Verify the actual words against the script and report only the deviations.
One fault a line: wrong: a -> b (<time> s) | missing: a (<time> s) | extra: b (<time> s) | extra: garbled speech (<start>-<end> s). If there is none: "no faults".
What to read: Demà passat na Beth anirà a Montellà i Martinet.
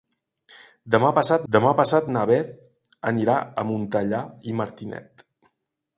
extra: demà passat (1.5 s)